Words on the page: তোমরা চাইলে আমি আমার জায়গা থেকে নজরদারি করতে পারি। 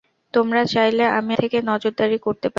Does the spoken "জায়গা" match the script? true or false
false